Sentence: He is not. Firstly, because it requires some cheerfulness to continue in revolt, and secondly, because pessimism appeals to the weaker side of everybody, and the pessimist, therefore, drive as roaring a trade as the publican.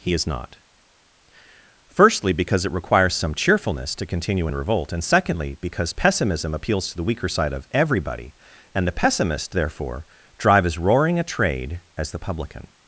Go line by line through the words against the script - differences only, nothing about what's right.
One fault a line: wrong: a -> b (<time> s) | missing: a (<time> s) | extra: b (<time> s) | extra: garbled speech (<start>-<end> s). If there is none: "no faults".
no faults